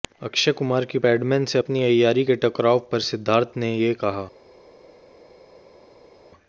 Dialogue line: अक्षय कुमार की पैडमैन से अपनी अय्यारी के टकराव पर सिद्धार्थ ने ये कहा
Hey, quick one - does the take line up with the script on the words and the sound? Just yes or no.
yes